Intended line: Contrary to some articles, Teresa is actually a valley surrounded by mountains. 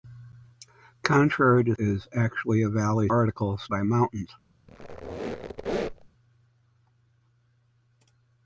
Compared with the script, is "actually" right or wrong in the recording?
right